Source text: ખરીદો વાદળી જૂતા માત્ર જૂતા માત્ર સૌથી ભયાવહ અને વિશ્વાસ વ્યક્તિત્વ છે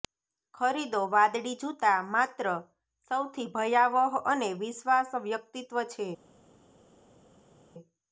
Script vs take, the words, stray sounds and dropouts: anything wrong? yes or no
yes